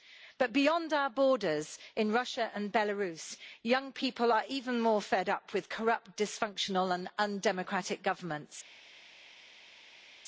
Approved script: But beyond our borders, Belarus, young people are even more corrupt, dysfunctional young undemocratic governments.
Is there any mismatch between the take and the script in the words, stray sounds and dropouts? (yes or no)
yes